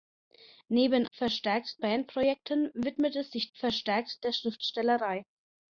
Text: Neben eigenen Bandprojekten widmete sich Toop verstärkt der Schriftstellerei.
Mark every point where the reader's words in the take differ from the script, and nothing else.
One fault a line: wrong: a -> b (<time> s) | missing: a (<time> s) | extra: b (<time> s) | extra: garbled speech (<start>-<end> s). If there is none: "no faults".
wrong: eigenen -> verstärkt (1.1 s)
missing: Toop (3.5 s)